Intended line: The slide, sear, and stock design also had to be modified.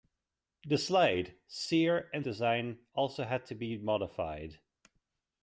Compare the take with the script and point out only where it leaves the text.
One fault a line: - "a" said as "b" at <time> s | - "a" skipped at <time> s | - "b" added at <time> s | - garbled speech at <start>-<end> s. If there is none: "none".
- "stock" skipped at 2.2 s